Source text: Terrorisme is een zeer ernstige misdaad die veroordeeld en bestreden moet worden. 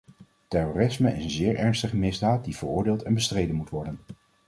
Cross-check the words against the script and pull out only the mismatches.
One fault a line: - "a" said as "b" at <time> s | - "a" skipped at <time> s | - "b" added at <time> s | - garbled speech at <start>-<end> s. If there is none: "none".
none